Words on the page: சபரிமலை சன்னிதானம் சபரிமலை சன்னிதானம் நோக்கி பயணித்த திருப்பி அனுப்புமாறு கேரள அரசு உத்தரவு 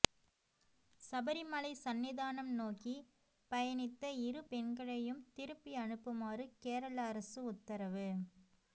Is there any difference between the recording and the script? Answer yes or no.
yes